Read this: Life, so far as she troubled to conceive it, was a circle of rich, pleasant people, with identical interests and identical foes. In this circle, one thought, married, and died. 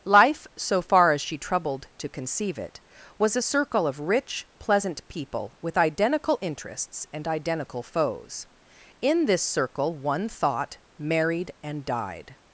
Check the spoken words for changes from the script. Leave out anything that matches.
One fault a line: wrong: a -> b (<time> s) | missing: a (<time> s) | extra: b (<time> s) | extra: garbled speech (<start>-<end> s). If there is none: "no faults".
no faults